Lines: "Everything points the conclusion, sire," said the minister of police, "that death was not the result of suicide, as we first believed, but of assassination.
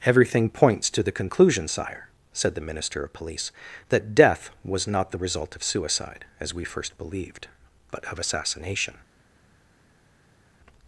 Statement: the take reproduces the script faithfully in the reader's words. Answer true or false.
false